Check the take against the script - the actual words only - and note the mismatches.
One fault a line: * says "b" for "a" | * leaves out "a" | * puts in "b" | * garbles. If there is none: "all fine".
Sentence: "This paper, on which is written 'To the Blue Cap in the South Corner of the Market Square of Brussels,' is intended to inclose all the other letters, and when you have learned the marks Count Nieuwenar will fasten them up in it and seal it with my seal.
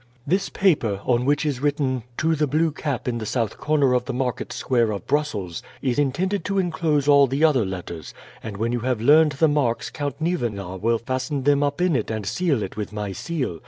all fine